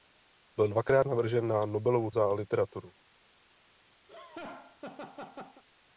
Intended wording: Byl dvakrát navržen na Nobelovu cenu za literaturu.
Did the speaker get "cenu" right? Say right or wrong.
wrong